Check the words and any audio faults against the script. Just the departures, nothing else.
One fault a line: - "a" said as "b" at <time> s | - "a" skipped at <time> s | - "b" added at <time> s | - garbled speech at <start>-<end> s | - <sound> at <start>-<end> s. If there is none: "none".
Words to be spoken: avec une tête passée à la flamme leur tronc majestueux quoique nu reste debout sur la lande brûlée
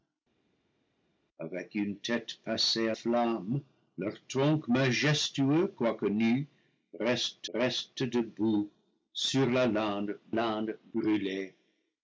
- "la" skipped at 3.0 s
- "reste" added at 7.5 s
- "lande" added at 10.3 s